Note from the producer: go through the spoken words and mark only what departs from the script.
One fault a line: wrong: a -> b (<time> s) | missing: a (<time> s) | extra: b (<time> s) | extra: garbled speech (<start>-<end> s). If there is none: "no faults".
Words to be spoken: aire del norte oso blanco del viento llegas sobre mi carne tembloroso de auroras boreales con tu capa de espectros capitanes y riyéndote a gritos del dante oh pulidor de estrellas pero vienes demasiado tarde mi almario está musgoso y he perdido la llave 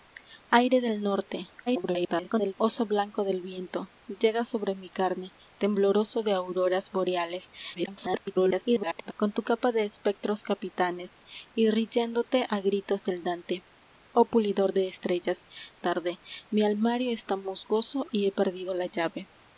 extra: garbled speech (1.7-2.5 s)
extra: garbled speech (7.7-9.1 s)
missing: pero vienes demasiado (15.5 s)